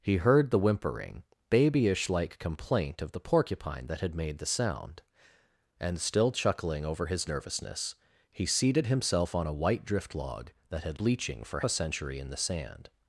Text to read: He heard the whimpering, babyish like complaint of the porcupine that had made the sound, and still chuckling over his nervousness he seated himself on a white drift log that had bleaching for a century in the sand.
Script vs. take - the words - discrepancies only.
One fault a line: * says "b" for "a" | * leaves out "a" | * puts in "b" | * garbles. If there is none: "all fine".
all fine